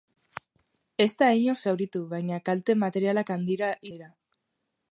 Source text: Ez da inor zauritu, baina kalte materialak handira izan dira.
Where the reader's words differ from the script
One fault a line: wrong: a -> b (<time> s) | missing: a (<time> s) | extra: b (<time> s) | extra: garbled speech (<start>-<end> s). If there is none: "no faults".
missing: izan (3.7 s)